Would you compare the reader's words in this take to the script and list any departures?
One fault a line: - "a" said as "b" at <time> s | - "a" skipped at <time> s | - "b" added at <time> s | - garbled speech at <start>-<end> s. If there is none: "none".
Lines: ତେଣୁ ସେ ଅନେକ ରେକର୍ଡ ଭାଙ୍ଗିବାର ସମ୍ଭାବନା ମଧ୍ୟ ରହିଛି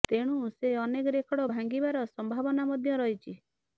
none